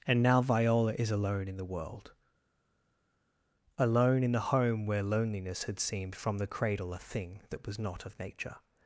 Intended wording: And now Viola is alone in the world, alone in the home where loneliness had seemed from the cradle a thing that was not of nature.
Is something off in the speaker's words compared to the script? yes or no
no